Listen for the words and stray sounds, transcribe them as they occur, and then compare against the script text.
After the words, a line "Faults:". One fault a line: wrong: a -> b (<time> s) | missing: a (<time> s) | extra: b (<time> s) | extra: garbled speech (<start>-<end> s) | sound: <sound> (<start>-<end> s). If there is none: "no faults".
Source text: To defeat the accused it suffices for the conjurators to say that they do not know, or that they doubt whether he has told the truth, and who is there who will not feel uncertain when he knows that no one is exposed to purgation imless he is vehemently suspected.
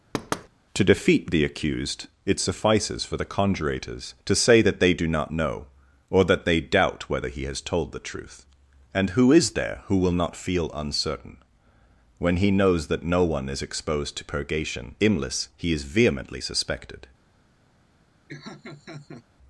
To defeat the accused it suffices for the conjurators to say that they do not know, or that they doubt whether he has told the truth, and who is there who will not feel uncertain when he knows that no one is exposed to purgation imless he is vehemently suspected.
Faults:
sound: thud (0.1-0.5 s)
sound: laugh (18.3-19.3 s)